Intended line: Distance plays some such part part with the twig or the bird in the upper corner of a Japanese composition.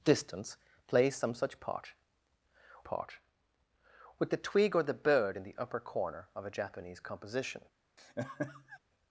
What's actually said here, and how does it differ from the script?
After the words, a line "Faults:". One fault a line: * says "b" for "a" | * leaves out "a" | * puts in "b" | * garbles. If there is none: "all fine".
Distance plays some such part part with the twig or the bird in the upper corner of a Japanese composition.
Faults:
all fine